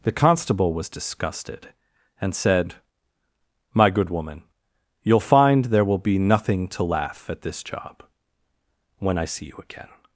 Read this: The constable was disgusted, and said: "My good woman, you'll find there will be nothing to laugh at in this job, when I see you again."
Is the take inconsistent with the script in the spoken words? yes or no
yes